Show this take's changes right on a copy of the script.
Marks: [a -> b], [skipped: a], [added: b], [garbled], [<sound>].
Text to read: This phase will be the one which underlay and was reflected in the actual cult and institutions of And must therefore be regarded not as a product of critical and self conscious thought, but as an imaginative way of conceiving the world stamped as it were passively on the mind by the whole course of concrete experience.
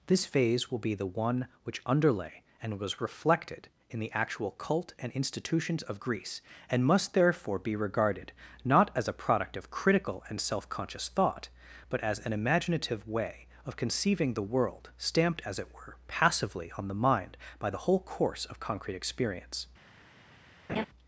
This phase will be the one which underlay and was reflected in the actual cult and institutions of [added: Greece] And must therefore be regarded not as a product of critical and self conscious thought, but as an imaginative way of conceiving the world stamped as it were passively on the mind by the whole course of concrete experience. [laugh]